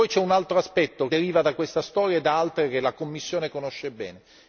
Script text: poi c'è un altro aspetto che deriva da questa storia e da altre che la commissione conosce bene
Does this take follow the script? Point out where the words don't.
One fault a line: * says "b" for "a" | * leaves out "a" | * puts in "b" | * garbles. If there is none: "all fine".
* leaves out "che"